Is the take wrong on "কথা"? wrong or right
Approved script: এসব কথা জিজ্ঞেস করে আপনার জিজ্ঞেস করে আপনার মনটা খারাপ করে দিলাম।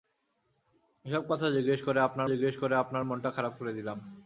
right